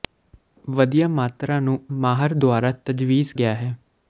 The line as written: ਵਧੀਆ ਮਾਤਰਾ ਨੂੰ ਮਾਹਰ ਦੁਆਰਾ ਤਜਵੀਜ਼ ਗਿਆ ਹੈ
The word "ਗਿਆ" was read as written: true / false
true